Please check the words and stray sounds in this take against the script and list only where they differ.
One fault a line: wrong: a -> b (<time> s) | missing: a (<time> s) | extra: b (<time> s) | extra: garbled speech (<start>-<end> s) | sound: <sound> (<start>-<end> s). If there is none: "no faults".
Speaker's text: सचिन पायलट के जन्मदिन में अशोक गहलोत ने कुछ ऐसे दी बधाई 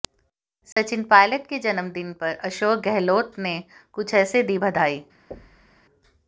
sound: dropout (0.7-0.8 s)
wrong: में -> पर (2.1 s)
sound: thud (5.3-5.8 s)